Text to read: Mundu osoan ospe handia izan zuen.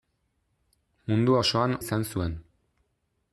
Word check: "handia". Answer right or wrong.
wrong